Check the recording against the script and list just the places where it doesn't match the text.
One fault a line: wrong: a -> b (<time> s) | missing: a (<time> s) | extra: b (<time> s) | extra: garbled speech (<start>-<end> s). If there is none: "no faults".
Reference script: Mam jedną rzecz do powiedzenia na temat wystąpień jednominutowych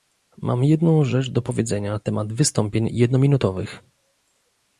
no faults